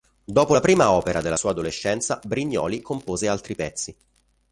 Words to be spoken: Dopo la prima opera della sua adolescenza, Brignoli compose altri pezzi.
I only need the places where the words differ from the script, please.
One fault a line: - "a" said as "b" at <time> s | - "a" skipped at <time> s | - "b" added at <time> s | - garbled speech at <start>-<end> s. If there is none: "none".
none